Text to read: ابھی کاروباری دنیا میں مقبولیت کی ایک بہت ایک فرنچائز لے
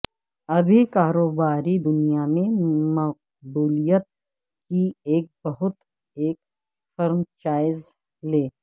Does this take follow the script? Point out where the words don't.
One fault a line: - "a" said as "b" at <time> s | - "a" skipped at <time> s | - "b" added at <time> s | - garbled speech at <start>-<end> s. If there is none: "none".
none